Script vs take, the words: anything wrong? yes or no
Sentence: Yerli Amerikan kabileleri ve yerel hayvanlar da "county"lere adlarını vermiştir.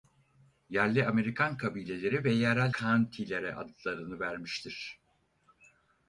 yes